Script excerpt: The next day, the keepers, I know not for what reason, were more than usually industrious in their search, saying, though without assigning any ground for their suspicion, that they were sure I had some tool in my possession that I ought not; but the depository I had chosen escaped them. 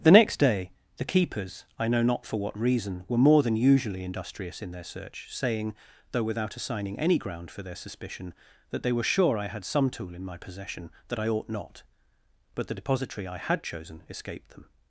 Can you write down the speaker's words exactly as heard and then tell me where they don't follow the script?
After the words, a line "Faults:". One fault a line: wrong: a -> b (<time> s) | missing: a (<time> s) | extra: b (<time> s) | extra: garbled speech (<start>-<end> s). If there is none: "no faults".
The next day, the keepers, I know not for what reason, were more than usually industrious in their search, saying, though without assigning any ground for their suspicion, that they were sure I had some tool in my possession that I ought not; but the depository I had chosen escaped them.
Faults:
no faults